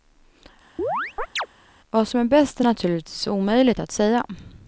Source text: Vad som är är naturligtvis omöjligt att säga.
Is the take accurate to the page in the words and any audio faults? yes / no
no